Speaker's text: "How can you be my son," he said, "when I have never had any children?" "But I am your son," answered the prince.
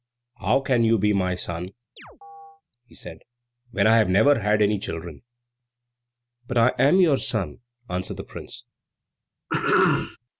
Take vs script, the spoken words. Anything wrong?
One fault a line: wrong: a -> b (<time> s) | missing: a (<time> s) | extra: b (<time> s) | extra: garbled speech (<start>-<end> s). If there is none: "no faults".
no faults